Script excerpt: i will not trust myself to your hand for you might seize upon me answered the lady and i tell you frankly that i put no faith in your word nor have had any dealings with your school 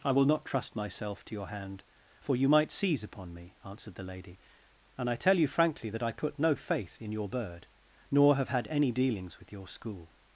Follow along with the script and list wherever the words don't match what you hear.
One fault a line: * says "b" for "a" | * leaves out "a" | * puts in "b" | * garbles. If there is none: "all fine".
* says "bird" for "word"